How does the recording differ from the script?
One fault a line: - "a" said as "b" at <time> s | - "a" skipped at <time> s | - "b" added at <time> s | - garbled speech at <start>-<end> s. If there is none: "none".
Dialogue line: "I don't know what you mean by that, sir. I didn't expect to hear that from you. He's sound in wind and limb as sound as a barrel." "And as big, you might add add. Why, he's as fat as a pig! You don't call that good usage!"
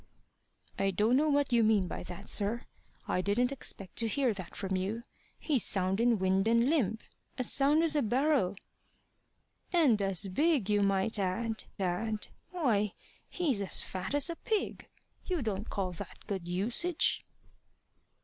none